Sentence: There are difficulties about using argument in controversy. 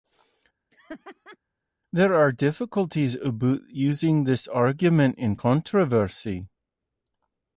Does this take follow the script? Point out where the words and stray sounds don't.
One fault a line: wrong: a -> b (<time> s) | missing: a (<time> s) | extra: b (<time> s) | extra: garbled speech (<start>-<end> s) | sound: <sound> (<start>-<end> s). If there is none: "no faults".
sound: laugh (0.7-1.4 s)
extra: this (4.2 s)